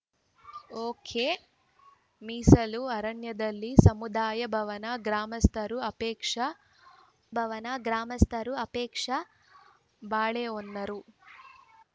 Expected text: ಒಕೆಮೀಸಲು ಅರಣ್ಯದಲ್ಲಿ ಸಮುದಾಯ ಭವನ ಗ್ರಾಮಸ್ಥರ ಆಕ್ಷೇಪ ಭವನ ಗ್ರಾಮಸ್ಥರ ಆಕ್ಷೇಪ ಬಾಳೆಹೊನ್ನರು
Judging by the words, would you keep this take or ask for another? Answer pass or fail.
pass